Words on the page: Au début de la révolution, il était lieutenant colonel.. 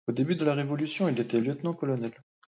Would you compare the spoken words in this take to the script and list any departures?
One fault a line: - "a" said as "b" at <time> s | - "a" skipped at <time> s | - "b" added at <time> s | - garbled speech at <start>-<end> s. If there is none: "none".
none